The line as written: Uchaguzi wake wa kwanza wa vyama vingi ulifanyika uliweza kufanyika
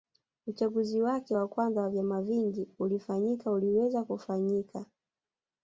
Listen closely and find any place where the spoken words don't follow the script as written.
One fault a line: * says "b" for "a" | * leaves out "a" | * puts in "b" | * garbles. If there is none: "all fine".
all fine